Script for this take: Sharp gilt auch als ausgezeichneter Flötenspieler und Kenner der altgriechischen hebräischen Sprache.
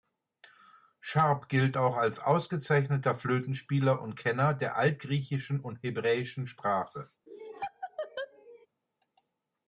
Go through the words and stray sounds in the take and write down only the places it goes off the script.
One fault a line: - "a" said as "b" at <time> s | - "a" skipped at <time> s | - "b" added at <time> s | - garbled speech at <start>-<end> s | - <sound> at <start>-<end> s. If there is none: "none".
- "und" added at 5.6 s
- laugh at 7.3-8.7 s